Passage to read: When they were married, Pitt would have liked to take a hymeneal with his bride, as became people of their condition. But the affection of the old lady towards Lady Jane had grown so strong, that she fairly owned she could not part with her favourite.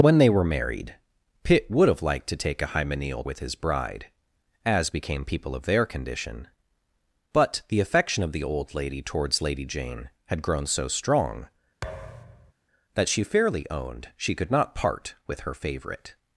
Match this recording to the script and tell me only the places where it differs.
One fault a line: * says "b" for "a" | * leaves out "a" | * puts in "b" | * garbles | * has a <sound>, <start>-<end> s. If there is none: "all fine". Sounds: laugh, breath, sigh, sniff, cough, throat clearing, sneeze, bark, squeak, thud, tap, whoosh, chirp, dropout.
* has a thud, 11.8-12.5 s